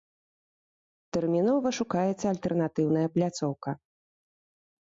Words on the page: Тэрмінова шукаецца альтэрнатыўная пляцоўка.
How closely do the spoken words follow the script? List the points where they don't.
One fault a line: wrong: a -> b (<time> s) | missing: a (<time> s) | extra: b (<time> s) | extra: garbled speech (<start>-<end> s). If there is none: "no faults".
no faults